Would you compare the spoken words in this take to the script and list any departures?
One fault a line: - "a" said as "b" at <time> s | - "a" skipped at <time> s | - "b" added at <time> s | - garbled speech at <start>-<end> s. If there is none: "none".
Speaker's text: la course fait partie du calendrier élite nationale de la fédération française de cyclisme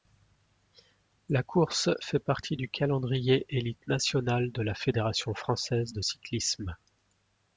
none